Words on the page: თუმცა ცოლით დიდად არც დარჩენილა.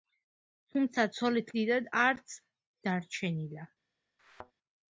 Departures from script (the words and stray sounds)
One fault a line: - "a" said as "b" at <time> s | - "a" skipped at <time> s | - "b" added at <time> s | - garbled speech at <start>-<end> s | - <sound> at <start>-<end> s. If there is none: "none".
- thud at 4.2-4.5 s